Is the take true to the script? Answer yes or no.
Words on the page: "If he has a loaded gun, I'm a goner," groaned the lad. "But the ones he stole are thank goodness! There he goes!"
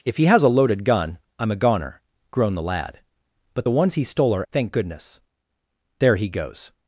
yes